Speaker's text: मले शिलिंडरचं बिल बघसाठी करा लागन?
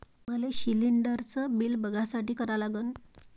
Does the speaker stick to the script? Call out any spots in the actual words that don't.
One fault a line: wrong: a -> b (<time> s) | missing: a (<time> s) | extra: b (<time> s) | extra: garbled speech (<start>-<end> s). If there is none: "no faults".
no faults